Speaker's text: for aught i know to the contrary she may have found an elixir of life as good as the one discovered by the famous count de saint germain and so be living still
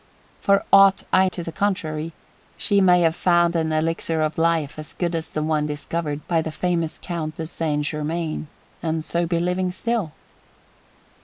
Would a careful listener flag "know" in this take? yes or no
yes